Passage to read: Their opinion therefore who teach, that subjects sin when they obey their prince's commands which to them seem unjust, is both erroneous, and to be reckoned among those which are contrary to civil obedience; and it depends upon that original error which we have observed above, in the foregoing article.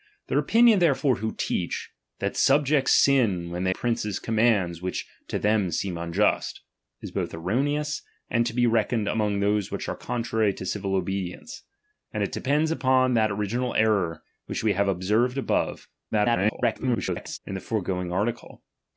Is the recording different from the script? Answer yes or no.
yes